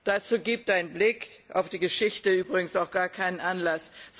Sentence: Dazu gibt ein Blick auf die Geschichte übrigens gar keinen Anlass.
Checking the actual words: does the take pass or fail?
fail